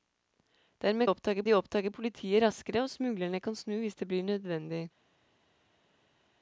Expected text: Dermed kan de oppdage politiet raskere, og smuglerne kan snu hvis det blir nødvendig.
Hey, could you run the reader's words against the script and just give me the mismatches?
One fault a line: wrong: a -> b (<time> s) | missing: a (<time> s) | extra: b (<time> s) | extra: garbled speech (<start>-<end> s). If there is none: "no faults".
wrong: kan -> oppdage (1.1 s)